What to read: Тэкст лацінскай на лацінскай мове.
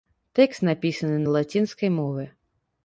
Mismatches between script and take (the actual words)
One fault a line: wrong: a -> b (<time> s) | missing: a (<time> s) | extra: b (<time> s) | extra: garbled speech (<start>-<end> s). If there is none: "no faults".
wrong: лацінскай -> напісаны (0.7 s)